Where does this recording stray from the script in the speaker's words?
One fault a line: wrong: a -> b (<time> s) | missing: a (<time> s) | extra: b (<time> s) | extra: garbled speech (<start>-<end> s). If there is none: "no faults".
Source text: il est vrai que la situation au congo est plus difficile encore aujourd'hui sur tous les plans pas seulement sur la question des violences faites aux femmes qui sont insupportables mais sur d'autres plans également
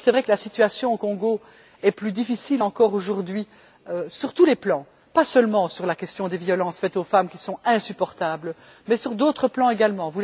no faults